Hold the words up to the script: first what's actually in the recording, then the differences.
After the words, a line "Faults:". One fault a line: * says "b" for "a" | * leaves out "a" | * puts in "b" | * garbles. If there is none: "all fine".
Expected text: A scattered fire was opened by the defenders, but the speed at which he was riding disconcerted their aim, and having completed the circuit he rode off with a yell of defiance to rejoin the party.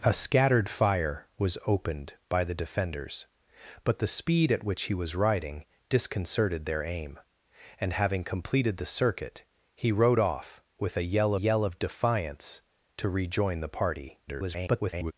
A scattered fire was opened by the defenders, but the speed at which he was riding disconcerted their aim, and having completed the circuit he rode off with a yell yell of defiance to rejoin the party. [garbled]
Faults:
* puts in "yell"
* garbles